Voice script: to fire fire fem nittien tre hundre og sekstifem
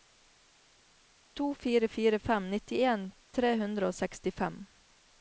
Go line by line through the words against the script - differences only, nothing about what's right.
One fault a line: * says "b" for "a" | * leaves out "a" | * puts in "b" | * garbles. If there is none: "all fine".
all fine